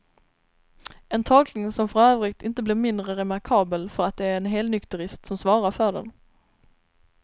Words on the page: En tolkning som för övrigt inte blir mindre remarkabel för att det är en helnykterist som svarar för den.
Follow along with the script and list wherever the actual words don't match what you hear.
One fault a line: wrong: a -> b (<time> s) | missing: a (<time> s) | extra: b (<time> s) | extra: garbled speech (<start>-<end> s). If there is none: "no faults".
no faults